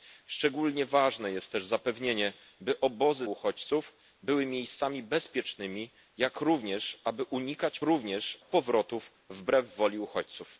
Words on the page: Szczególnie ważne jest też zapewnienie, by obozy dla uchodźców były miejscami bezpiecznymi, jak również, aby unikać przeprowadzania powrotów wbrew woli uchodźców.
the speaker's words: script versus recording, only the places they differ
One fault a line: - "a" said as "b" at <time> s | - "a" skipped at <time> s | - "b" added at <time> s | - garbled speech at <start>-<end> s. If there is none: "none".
- "dla" skipped at 3.3 s
- "przeprowadzania" said as "również" at 7.8 s